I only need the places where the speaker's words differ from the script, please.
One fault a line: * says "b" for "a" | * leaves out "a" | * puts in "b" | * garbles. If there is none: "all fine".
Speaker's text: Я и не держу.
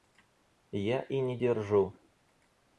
all fine